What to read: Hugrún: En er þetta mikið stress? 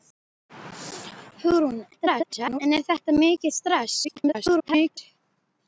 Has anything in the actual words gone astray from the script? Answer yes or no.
yes